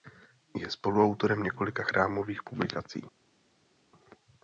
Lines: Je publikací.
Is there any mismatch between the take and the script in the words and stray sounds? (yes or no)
yes